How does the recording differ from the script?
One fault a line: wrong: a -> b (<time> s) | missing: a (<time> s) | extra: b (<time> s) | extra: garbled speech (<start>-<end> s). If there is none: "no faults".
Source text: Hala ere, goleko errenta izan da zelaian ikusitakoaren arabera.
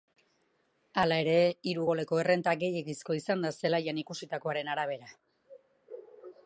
extra: hiru (1.7 s)
extra: gehiegizkoa (2.6 s)